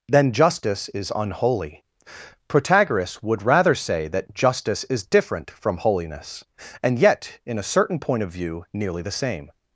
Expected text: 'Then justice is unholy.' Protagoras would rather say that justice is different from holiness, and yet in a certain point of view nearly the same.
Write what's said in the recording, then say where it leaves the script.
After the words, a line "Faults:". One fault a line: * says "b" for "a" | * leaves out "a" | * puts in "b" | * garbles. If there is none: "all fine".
'Then justice is unholy.' Protagoras would rather say that justice is different from holiness, and yet in a certain point of view nearly the same.
Faults:
all fine